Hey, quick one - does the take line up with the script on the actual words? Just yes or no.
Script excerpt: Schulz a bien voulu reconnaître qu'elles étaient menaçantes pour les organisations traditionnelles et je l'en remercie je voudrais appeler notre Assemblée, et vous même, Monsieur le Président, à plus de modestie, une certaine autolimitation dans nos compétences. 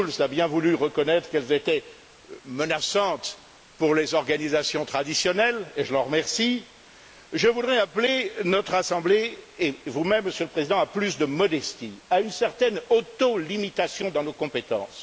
no